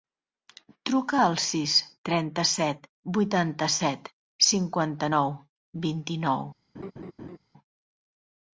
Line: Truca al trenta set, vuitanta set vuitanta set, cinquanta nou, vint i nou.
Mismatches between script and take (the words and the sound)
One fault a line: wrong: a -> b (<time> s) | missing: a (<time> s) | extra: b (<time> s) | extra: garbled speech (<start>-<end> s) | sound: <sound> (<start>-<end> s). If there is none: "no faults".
extra: sis (1.5 s)
missing: vuitanta set (4.1 s)
sound: laugh (6.7-7.4 s)